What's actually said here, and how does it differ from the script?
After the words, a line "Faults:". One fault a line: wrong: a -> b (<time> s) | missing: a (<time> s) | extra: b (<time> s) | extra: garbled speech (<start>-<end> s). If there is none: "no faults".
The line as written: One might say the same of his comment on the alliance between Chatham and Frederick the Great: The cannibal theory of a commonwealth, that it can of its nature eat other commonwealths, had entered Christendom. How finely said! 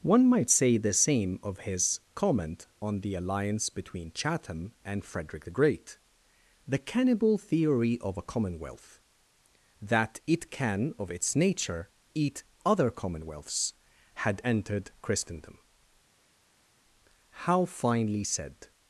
One might say the same of his comment on the alliance between Chatham and Frederick the Great: The cannibal theory of a commonwealth, that it can of its nature eat other commonwealths, had entered Christendom. How finely said!
Faults:
no faults